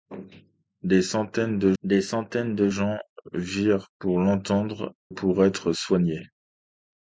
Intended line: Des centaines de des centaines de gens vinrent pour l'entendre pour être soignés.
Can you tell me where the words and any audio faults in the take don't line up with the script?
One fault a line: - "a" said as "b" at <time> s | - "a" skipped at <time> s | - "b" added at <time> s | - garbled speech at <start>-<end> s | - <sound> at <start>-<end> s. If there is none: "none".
none